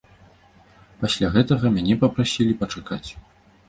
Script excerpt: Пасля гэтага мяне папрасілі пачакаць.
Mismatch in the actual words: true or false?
false